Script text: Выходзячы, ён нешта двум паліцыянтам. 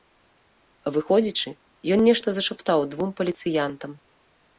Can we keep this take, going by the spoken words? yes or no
no